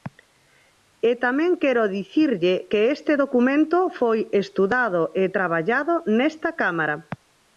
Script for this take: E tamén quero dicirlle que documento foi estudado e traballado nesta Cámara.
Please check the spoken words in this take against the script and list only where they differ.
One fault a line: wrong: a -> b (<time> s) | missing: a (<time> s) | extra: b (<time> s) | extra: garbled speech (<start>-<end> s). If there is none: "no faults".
extra: este (3.0 s)